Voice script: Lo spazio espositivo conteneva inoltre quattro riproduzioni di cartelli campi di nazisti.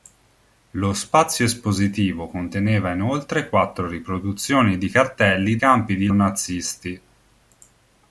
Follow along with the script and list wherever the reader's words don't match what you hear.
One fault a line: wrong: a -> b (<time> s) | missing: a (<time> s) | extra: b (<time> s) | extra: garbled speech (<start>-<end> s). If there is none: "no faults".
no faults